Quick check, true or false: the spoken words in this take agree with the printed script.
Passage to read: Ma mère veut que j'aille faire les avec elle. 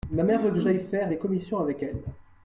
false